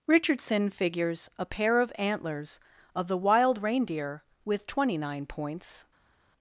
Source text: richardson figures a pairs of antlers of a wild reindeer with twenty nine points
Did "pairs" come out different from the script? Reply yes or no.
yes